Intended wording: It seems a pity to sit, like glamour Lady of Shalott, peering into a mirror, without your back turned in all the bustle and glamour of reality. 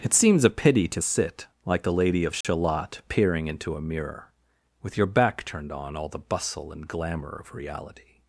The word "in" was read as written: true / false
false